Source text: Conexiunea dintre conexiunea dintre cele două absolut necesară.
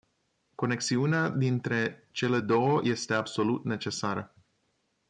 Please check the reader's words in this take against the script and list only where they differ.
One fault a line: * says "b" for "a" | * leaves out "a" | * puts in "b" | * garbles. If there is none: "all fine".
* leaves out "conexiunea dintre"
* puts in "este"